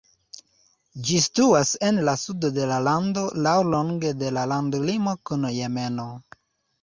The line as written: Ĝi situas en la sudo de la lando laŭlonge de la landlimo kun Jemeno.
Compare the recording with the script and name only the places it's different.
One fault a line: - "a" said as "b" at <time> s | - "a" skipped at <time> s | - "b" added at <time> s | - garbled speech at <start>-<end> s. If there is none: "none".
none